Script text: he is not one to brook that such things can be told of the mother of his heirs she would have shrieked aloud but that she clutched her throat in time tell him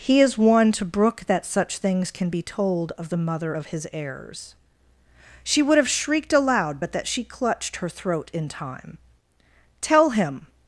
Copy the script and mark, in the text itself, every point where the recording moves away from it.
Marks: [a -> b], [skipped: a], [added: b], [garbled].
he is [skipped: not] one to brook that such things can be told of the mother of his heirs she would have shrieked aloud but that she clutched her throat in time tell him